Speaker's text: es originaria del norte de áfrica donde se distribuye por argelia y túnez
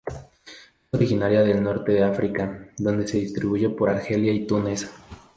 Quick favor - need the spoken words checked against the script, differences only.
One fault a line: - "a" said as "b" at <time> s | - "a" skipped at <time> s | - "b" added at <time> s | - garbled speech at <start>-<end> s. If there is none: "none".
none